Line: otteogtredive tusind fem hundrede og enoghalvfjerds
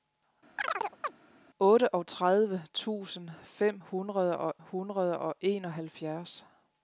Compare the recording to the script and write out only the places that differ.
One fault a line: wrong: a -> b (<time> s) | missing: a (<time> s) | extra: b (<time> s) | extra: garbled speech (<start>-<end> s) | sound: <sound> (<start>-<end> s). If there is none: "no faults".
sound: chirp (0.6-1.1 s)
extra: hundrede og (4.6 s)